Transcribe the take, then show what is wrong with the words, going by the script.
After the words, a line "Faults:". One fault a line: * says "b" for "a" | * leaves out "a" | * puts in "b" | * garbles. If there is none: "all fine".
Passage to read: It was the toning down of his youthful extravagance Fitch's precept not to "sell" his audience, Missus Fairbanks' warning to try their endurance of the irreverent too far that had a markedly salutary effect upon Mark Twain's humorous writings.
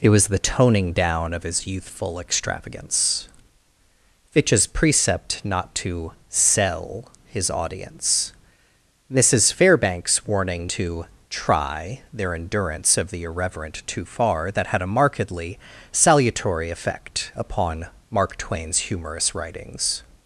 It was the toning down of his youthful extravagance Fitch's precept not to "sell" his audience, Missus Fairbanks' warning to try their endurance of the irreverent too far that had a markedly salutary effect upon Mark Twain's humorous writings.
Faults:
all fine